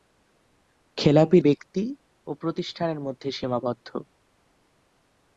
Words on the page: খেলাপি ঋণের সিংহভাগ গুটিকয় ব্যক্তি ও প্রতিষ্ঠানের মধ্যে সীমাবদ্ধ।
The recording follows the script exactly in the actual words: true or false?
false